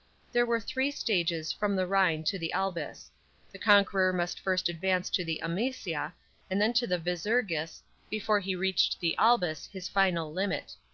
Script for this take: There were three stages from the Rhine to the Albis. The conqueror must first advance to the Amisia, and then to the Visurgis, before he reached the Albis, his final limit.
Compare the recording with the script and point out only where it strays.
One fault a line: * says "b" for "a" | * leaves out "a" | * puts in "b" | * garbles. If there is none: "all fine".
all fine